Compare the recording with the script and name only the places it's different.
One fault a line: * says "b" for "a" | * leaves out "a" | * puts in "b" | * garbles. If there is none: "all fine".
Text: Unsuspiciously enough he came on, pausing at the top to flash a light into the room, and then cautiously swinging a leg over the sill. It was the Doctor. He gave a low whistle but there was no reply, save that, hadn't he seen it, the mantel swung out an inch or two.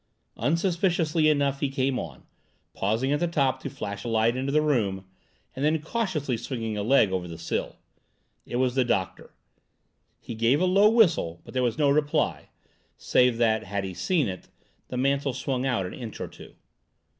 * says "had" for "hadn't"